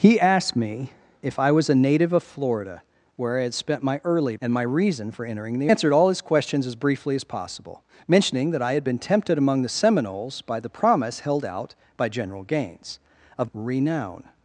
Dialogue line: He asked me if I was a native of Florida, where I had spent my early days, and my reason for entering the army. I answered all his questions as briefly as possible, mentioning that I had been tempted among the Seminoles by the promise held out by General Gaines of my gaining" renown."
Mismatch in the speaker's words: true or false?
true